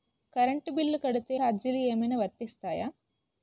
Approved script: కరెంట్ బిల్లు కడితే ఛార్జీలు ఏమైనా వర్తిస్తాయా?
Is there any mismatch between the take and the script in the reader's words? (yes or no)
no